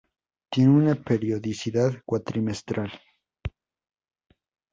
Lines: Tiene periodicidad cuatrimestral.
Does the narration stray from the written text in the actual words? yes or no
yes